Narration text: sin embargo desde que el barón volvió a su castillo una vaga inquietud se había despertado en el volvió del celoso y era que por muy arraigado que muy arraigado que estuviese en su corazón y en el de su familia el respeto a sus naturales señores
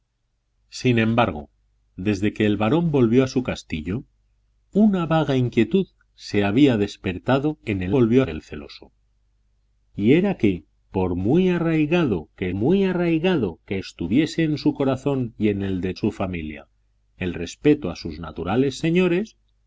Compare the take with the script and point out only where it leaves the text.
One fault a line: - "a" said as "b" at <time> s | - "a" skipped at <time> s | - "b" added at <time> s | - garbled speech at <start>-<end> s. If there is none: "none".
none